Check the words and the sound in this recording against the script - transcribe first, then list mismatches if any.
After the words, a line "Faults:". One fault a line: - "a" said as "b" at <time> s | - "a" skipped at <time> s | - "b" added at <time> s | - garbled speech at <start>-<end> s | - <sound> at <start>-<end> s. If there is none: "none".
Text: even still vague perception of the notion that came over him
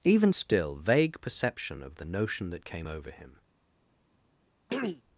even still vague perception of the notion that came over him
Faults:
- throat clearing at 4.7-5.0 s